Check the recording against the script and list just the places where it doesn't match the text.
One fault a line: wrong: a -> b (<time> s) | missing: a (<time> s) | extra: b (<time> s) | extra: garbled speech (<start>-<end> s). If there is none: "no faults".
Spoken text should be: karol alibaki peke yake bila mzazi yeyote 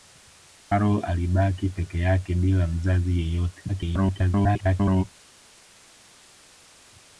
extra: garbled speech (3.7-5.0 s)